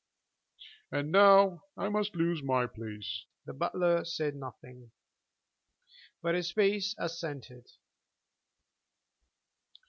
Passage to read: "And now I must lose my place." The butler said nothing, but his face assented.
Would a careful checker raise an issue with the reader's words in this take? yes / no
no